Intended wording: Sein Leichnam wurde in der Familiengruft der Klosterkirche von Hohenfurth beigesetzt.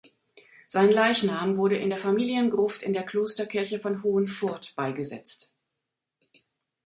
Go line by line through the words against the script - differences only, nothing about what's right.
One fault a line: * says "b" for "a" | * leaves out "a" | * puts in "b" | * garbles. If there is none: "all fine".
* puts in "in"